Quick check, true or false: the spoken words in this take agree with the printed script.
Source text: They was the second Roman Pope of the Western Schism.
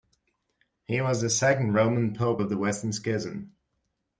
false